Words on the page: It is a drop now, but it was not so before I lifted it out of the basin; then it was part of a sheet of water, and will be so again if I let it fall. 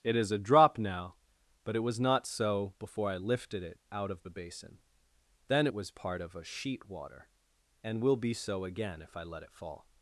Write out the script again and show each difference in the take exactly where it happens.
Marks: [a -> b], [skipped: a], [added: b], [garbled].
It is a drop now, but it was not so before I lifted it out of the basin; then it was part of a sheet [skipped: of] water, and will be so again if I let it fall.